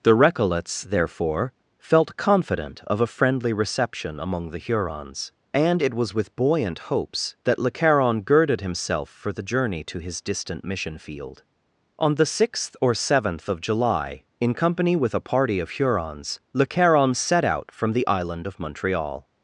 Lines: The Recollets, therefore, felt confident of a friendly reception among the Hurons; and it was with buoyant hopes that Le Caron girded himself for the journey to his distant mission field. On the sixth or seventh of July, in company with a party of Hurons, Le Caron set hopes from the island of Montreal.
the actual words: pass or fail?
fail